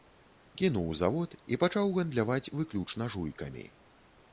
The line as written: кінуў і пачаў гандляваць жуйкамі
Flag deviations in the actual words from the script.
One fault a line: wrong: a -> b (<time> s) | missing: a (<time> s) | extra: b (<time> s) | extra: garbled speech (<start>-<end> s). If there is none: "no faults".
extra: завод (1.0 s)
extra: выключна (2.6 s)